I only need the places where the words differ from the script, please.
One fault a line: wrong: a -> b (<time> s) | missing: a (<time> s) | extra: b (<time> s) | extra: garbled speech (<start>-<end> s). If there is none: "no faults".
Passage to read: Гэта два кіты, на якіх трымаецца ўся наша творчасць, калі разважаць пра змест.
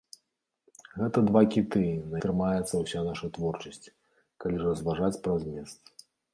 missing: якіх (2.2 s)